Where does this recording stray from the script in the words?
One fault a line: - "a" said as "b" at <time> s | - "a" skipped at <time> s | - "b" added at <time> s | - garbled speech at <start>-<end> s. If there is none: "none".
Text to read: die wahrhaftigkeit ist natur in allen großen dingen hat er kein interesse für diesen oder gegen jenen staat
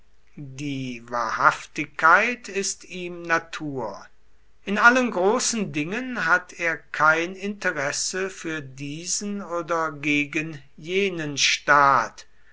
- "ihm" added at 2.9 s